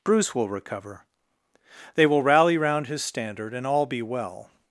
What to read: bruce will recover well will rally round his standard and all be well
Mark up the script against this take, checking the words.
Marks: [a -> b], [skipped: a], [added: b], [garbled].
bruce will recover [well -> they] will rally round his standard and all be well